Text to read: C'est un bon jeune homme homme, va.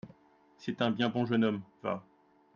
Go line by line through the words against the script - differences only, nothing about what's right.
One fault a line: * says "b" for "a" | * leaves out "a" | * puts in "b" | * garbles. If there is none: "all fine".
* puts in "bien"
* leaves out "homme"